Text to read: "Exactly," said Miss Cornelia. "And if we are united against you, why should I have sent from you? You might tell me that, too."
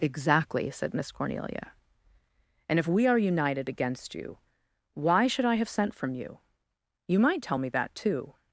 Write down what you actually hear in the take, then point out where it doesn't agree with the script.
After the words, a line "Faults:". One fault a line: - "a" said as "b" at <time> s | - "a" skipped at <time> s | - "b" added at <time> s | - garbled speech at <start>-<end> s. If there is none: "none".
"Exactly," said Miss Cornelia. "And if we are united against you, why should I have sent from you? You might tell me that, too."
Faults:
none